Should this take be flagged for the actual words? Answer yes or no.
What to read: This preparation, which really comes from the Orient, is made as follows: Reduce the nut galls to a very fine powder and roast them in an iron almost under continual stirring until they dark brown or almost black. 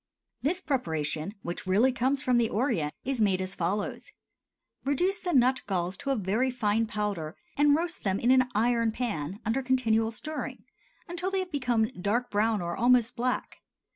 yes